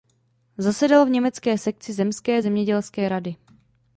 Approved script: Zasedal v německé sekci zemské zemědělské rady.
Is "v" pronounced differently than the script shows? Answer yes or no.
no